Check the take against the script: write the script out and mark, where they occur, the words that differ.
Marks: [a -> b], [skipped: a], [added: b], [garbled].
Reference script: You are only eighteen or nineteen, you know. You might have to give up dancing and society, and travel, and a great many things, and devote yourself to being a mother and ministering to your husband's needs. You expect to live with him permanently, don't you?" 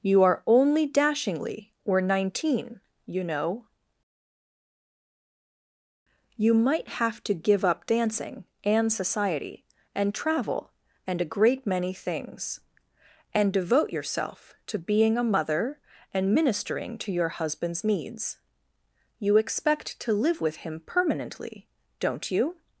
You are only [eighteen -> dashingly] or nineteen, you know. You might have to give up dancing and society, and travel, and a great many things, and devote yourself to being a mother and ministering to your husband's needs. You expect to live with him permanently, don't you?"